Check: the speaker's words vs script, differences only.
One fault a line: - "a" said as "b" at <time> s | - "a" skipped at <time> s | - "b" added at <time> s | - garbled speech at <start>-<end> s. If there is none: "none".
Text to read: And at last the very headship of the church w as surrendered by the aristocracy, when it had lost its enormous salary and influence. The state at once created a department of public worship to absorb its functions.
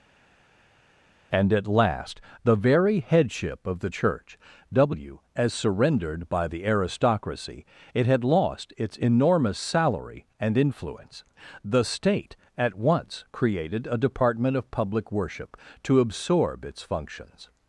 - "when" skipped at 7.7 s